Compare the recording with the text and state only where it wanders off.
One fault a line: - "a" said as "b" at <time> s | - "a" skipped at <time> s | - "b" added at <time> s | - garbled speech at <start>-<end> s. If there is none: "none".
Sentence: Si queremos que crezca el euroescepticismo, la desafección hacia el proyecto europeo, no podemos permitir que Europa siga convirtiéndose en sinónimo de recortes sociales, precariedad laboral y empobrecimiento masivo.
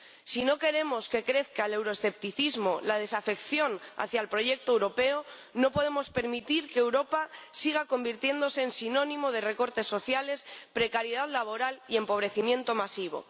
- "no" added at 0.5 s